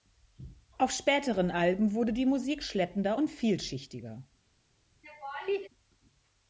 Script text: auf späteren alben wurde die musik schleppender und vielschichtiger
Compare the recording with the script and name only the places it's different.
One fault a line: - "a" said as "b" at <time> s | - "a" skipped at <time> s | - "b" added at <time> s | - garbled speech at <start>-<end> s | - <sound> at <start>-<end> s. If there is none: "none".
- laugh at 5.0-5.7 s